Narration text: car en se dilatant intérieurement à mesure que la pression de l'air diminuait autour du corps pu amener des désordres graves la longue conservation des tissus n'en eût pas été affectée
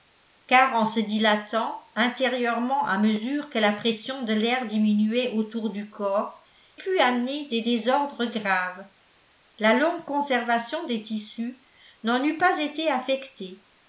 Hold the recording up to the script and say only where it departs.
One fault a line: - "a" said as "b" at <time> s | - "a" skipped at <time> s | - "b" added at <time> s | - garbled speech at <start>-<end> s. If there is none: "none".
none